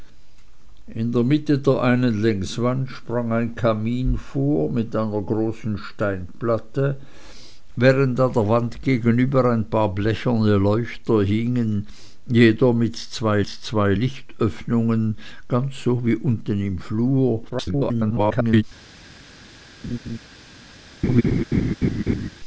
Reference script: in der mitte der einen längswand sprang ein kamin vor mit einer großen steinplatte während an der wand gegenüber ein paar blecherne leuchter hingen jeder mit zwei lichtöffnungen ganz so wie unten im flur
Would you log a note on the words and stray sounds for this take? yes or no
yes